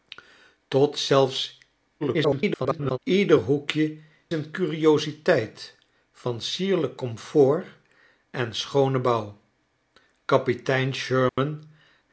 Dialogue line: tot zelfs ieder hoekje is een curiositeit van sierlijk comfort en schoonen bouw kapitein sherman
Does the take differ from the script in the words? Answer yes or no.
yes